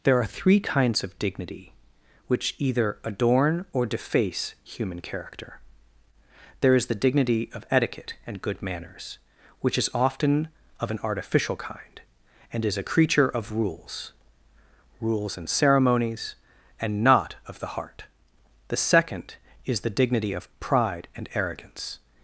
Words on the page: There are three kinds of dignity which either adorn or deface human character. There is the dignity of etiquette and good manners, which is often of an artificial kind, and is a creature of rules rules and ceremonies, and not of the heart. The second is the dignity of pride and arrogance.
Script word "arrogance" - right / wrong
right